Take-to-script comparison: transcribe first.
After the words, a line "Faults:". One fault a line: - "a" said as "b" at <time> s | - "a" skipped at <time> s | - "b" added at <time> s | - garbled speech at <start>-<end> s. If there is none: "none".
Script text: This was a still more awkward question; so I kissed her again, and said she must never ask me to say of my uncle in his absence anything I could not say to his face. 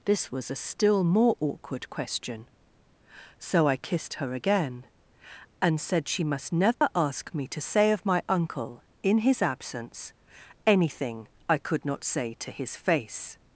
This was a still more awkward question; so I kissed her again, and said she must never ask me to say of my uncle in his absence anything I could not say to his face.
Faults:
none